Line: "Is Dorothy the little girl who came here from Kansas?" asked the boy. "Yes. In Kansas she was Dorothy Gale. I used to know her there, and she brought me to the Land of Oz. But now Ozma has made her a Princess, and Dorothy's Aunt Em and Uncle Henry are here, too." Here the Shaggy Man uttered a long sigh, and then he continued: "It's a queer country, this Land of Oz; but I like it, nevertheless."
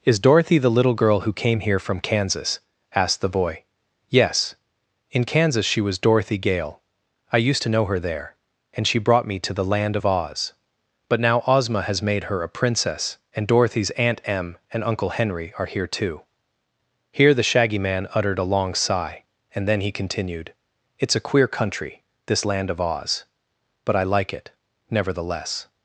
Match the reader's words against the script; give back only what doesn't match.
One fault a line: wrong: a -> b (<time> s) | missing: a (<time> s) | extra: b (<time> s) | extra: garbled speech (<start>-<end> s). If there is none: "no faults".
no faults